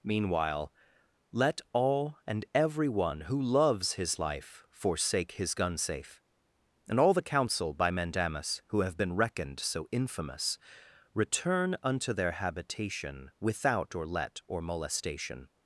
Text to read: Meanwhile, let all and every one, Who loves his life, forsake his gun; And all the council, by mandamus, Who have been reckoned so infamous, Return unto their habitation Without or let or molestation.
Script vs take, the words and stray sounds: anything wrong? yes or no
yes